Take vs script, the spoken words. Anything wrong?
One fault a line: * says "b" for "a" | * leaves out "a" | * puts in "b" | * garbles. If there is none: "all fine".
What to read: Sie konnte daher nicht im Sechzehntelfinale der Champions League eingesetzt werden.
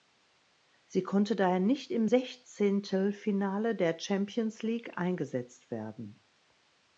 all fine